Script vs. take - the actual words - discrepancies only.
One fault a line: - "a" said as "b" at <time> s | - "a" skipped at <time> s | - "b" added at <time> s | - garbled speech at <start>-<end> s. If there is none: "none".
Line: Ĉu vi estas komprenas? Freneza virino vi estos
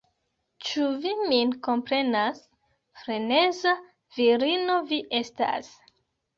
- "estas" said as "min" at 1.3 s
- "estos" said as "estas" at 5.2 s